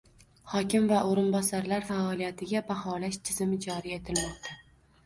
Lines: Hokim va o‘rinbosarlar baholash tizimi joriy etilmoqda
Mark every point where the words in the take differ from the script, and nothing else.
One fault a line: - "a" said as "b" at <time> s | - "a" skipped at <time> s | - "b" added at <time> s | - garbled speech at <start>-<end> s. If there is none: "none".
- "faoliyatiga" added at 1.9 s